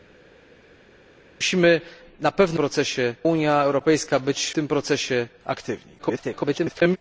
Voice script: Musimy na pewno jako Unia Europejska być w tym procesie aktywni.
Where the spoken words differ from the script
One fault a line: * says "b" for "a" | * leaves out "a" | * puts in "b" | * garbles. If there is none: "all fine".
* says "procesie" for "jako"
* leaves out "w"
* garbles